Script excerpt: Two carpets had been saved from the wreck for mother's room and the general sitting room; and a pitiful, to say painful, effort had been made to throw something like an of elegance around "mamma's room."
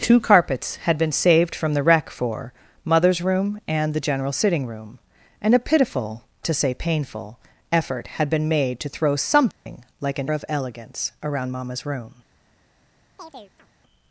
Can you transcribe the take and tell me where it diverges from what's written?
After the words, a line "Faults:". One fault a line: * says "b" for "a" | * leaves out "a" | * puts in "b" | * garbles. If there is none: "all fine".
Two carpets had been saved from the wreck for mother's room and the general sitting room; and a pitiful, to say painful, effort had been made to throw something like an of elegance around "mamma's room."
Faults:
all fine